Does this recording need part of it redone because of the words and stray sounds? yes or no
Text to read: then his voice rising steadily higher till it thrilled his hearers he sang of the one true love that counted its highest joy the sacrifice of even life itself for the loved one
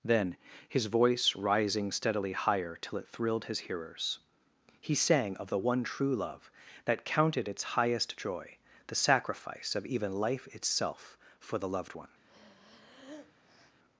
yes